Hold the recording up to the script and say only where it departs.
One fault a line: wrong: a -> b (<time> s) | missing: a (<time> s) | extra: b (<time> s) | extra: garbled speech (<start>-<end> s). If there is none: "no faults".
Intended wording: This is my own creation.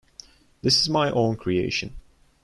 no faults